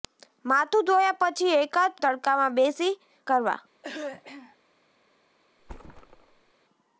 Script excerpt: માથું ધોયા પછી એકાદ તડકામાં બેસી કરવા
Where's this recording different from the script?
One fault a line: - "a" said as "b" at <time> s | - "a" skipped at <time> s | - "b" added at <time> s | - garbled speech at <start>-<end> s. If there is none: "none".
none